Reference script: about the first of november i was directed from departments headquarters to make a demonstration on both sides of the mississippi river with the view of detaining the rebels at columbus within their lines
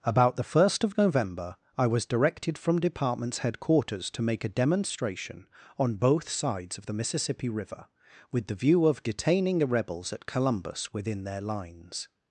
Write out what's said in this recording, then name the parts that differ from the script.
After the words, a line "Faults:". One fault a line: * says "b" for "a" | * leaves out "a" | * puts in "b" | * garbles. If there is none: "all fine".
about the first of november i was directed from departments headquarters to make a demonstration on both sides of the mississippi river with the view of detaining the rebels at columbus within their lines
Faults:
all fine